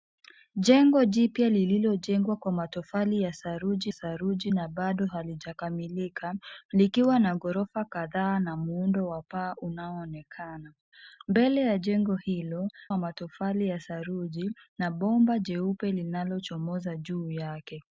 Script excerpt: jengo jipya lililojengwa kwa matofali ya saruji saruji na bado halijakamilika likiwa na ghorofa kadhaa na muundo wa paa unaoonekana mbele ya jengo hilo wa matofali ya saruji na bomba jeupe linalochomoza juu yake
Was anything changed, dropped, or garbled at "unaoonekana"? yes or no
no